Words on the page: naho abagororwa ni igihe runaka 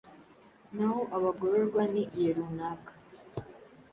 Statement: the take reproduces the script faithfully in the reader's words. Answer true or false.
true